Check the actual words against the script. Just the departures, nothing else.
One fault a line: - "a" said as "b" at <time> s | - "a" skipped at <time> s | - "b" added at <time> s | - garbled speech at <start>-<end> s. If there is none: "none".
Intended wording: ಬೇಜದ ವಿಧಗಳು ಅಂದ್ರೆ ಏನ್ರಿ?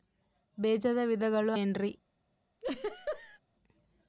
- "ಅಂದ್ರೆ" skipped at 1.5 s